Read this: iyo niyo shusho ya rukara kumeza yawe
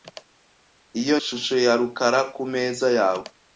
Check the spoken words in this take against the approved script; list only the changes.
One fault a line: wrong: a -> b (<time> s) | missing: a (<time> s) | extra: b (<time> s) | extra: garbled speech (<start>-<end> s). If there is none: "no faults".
missing: niyo (1.2 s)